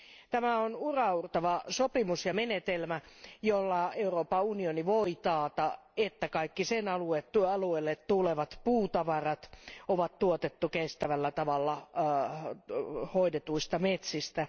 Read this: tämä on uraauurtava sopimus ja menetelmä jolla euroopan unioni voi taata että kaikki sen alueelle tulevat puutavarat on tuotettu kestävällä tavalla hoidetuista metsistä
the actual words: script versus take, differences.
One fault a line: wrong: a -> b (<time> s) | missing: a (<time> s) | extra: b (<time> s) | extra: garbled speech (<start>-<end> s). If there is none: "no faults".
no faults